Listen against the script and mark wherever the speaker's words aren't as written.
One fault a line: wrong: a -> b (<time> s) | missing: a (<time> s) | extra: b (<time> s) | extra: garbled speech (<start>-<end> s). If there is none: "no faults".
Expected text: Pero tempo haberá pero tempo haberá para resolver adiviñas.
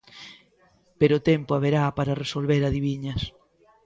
missing: pero tempo haberá (1.8 s)